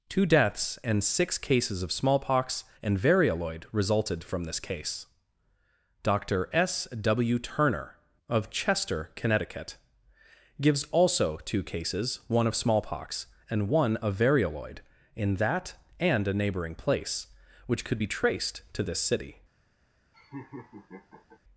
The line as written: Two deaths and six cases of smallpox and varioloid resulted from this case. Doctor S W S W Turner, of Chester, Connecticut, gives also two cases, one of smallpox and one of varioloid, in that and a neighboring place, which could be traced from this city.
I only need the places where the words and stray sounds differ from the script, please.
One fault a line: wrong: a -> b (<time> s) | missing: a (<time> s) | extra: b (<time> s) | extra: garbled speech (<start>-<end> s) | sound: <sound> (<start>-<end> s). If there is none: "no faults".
missing: S W (7.4 s)
wrong: from -> to (18.7 s)
sound: laugh (20.1-21.4 s)